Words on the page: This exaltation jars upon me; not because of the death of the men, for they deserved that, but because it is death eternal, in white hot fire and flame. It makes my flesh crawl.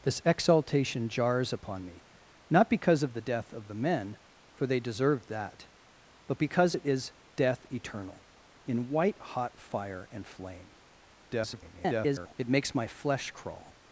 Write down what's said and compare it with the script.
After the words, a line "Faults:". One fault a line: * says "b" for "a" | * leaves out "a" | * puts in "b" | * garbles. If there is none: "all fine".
This exaltation jars upon me; not because of the death of the men, for they deserved that, but because it is death eternal, in white hot fire and flame. [garbled] It makes my flesh crawl.
Faults:
* garbles